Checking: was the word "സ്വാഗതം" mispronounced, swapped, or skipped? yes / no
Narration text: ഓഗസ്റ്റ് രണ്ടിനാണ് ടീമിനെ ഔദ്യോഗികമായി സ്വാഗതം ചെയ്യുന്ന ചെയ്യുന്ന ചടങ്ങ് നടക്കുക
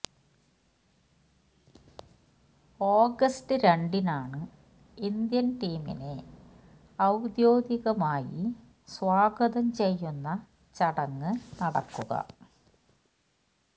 no